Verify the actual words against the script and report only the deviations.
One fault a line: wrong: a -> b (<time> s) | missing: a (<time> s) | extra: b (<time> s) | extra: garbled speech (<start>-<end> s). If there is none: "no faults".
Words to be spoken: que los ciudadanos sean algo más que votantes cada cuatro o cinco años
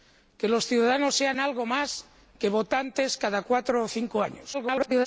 extra: garbled speech (4.5-5.1 s)